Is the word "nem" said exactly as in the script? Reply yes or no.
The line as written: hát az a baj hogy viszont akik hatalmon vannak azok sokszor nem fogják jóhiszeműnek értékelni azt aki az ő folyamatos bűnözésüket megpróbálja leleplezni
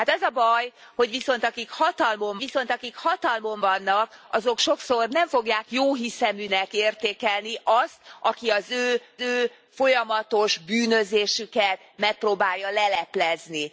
yes